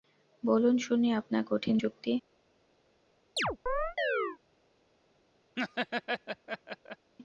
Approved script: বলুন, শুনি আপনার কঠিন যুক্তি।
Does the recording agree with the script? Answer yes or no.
yes